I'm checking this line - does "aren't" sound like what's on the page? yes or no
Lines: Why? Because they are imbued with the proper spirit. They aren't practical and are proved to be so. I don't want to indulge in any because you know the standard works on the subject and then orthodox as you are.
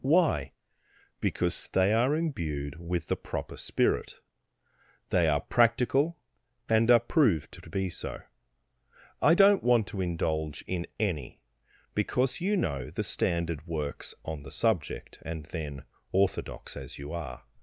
no